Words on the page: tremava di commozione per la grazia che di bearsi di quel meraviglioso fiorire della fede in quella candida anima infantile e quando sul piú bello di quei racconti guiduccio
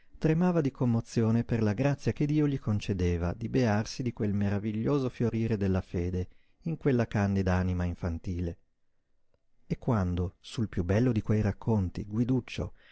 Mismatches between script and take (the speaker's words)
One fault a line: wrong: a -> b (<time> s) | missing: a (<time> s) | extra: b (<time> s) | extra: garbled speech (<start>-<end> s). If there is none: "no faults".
extra: dio gli concedeva (2.2 s)